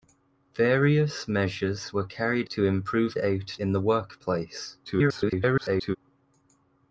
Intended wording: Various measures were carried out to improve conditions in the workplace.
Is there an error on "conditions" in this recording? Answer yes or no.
yes